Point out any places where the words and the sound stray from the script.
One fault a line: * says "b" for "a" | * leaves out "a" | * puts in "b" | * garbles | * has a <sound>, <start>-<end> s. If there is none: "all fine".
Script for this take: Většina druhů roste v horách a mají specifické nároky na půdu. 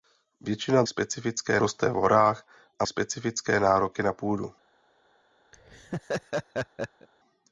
* says "specifické" for "druhů"
* leaves out "mají"
* has a laugh, 5.5-7.1 s